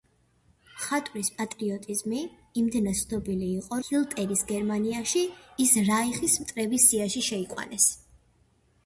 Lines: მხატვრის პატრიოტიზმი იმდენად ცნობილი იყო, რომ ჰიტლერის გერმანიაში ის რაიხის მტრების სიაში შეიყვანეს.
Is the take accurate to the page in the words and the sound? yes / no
no